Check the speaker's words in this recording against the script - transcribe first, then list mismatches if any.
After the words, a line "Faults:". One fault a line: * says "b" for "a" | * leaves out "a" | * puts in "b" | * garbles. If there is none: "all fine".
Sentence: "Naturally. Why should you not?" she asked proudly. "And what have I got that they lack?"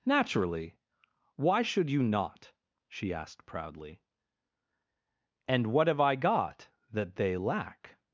"Naturally. Why should you not?" she asked proudly. "And what have I got that they lack?"
Faults:
all fine